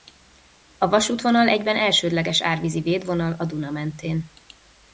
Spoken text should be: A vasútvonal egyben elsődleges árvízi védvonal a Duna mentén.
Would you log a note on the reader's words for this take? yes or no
no